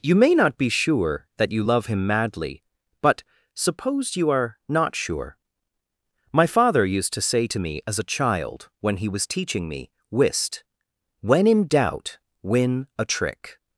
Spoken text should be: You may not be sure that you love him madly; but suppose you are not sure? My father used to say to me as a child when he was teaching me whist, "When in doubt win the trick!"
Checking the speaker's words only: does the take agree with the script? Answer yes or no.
no